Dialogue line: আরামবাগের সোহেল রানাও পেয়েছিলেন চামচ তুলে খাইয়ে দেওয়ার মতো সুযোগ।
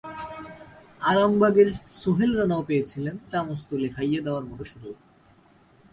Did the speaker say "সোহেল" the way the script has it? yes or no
yes